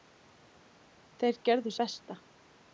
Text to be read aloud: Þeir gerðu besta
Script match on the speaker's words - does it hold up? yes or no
yes